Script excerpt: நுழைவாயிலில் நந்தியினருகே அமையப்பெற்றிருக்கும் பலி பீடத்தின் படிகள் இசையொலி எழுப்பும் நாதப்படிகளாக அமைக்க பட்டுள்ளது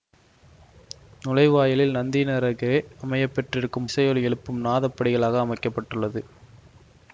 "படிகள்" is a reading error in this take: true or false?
true